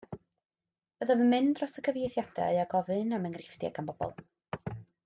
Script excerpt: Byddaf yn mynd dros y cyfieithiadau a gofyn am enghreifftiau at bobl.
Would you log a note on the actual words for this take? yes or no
yes